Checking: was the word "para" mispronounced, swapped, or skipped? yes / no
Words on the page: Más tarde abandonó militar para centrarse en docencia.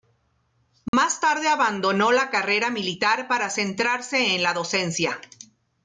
no